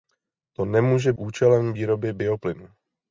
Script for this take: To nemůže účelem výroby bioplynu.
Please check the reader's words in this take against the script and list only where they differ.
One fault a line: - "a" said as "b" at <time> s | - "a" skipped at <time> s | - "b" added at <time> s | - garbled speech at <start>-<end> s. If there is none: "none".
none